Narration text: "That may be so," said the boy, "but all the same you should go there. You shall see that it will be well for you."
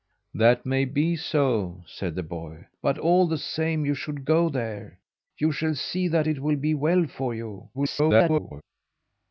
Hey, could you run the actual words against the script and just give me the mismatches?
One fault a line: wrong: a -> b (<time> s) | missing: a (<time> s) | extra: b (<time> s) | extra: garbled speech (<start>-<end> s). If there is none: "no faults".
extra: garbled speech (7.7-8.6 s)